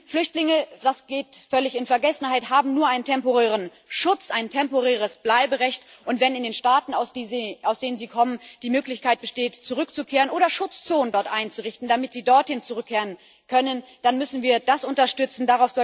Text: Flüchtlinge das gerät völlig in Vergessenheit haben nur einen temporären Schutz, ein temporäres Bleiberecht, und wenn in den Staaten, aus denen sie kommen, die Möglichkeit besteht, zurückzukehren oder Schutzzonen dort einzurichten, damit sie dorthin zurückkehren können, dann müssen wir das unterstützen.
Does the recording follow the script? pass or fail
pass